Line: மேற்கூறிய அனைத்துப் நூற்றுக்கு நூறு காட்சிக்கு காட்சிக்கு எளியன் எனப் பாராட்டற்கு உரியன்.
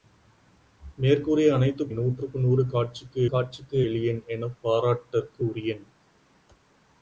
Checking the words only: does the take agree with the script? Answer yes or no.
yes